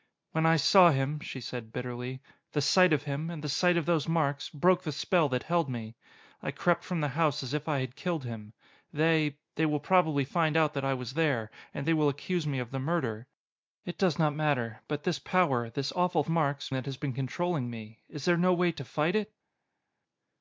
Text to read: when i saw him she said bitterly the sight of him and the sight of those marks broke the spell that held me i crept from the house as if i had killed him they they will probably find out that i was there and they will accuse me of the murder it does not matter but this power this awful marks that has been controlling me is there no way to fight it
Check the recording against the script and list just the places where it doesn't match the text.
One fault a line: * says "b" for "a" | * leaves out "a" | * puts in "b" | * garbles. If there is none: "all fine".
all fine